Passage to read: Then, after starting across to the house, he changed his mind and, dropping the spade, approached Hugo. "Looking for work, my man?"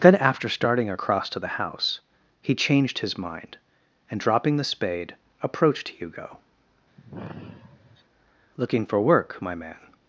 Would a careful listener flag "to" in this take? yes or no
no